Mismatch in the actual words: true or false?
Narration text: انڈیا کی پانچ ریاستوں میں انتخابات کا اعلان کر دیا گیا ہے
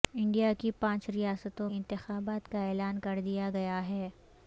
true